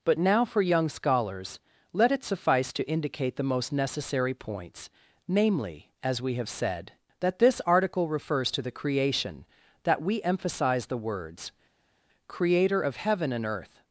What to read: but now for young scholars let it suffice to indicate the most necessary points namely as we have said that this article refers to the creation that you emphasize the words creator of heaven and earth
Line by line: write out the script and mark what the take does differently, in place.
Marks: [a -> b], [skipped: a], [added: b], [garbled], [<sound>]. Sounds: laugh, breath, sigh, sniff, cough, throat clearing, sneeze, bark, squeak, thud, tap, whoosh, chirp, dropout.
but now for young scholars let it suffice to indicate the most necessary points namely as we have said that this article refers to the creation that [you -> we] emphasize the words creator of heaven and earth